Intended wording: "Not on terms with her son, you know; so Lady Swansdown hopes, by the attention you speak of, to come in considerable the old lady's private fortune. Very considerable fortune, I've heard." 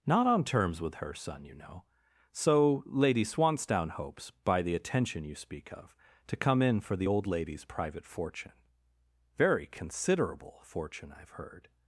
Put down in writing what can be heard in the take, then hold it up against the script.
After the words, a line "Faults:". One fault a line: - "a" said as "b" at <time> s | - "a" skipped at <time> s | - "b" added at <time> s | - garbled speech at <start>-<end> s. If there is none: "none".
"Not on terms with her son, you know; so Lady Swansdown hopes, by the attention you speak of, to come in for the old lady's private fortune. Very considerable fortune, I've heard."
Faults:
- "considerable" said as "for" at 6.8 s